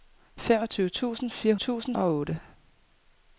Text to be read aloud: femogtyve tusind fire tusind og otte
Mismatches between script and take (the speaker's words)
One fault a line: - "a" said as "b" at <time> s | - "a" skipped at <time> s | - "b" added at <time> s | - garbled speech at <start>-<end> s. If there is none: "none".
none